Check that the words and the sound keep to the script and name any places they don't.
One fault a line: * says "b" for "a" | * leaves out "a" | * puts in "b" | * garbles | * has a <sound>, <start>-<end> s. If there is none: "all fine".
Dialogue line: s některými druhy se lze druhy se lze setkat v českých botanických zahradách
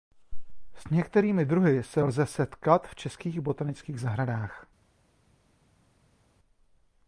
* leaves out "druhy se lze"